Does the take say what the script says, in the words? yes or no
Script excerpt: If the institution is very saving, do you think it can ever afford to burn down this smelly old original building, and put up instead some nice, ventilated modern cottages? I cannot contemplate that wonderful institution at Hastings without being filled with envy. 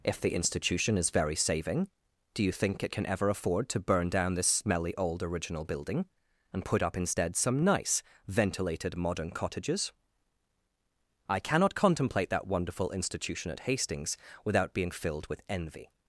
yes